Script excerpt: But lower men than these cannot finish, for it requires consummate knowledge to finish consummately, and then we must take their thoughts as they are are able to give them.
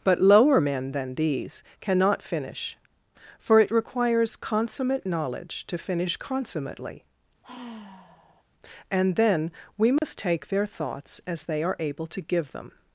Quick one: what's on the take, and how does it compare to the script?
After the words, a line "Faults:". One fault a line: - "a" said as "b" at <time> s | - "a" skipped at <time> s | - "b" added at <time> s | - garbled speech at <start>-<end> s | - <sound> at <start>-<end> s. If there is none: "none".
But lower men than these cannot finish, for it requires consummate knowledge to finish consummately, and then we must take their thoughts as they are able to give them.
Faults:
- sigh at 7.4-8.4 s
- dropout at 10.0-10.0 s
- "are" skipped at 11.8 s